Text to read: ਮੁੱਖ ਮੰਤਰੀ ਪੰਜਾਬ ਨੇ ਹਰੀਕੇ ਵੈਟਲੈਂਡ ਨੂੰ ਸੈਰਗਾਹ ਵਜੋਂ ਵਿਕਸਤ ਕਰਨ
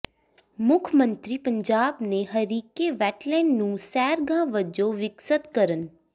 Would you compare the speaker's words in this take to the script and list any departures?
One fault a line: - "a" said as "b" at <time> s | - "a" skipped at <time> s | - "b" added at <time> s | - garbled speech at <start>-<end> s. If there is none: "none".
none